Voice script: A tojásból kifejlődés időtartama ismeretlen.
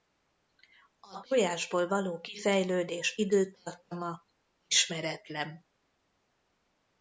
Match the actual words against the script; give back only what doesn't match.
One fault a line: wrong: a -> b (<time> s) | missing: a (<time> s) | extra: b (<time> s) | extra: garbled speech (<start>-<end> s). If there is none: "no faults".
extra: való (1.9 s)